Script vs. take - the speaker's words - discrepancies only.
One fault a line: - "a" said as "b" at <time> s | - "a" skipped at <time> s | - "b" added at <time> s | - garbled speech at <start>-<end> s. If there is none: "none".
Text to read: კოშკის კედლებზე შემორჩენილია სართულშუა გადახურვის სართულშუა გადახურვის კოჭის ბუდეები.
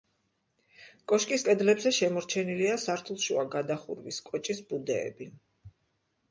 - "სართულშუა გადახურვის" skipped at 4.2 s